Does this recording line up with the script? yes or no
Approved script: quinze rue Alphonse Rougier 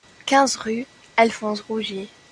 yes